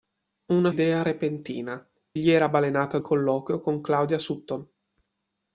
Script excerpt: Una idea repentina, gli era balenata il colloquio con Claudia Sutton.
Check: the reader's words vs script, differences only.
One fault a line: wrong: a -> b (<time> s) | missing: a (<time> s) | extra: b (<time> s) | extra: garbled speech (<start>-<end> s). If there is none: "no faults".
no faults